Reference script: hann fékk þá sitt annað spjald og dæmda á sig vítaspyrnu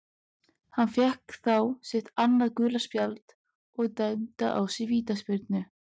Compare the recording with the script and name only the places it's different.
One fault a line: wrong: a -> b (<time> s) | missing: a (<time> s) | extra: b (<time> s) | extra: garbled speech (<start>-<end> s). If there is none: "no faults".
extra: gula (2.6 s)